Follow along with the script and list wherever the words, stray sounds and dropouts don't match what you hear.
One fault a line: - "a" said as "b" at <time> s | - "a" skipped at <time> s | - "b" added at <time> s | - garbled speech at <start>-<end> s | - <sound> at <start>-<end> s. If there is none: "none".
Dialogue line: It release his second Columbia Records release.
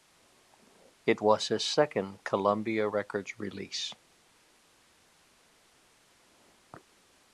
- "release" said as "was" at 1.2 s